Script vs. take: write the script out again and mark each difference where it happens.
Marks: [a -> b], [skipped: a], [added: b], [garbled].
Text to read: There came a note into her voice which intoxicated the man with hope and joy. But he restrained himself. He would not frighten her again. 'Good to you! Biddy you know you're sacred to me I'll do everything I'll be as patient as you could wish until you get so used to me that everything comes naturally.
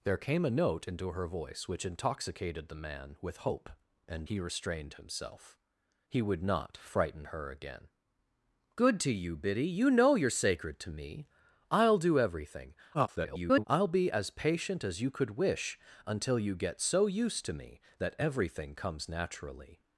There came a note into her voice which intoxicated the man with hope and [skipped: joy. But] he restrained himself. He would not frighten her again. 'Good to you! Biddy you know you're sacred to me I'll do everything [garbled] I'll be as patient as you could wish until you get so used to me that everything comes naturally.